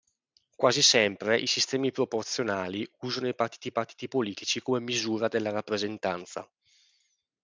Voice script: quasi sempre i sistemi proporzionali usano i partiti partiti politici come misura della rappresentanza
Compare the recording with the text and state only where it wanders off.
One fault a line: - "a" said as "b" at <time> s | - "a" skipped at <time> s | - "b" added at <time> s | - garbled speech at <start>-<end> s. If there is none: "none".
none